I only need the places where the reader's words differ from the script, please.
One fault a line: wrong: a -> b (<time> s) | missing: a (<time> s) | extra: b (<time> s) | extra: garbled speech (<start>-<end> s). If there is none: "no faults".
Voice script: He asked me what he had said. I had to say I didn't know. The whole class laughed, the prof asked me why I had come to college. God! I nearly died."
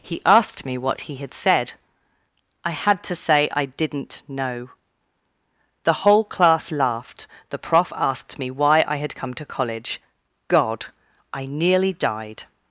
no faults